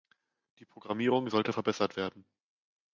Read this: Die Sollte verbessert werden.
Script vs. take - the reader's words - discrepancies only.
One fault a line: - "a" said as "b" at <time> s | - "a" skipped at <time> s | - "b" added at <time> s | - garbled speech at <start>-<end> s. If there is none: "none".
- "Programmierung" added at 0.7 s